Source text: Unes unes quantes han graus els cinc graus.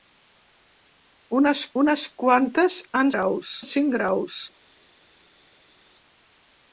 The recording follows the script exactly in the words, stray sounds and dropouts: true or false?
true